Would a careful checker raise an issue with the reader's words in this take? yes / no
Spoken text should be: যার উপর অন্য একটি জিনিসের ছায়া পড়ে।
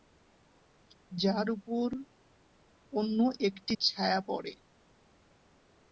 yes